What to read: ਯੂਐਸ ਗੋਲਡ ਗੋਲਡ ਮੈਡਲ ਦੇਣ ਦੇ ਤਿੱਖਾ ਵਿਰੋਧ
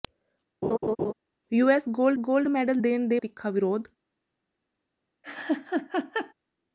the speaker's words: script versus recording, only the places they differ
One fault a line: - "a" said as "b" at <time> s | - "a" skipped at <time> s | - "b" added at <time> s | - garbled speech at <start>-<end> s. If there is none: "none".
none